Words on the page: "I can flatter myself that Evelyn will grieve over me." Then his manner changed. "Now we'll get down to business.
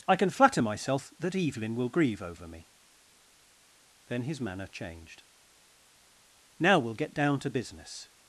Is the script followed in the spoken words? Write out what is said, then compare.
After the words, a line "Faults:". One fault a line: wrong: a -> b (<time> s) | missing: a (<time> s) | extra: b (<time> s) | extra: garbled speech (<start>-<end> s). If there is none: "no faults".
"I can flatter myself that Evelyn will grieve over me." Then his manner changed. "Now we'll get down to business.
Faults:
no faults